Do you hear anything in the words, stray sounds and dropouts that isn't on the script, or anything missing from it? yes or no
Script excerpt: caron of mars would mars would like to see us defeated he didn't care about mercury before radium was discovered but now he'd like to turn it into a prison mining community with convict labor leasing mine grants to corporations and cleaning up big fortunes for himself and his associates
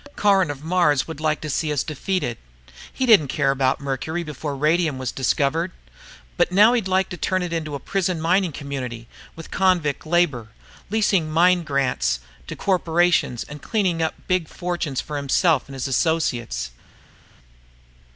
yes